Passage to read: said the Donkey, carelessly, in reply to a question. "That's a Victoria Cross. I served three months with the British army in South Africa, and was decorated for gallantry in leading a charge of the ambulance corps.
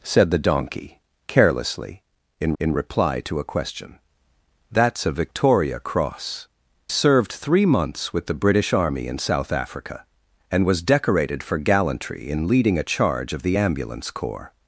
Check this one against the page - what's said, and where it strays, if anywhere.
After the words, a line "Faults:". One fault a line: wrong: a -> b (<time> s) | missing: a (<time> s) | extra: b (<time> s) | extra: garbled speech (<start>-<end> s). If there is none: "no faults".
said the Donkey, carelessly, in in reply to a question. "That's a Victoria Cross. served three months with the British army in South Africa, and was decorated for gallantry in leading a charge of the ambulance corps.
Faults:
extra: in (2.6 s)
missing: I (6.5 s)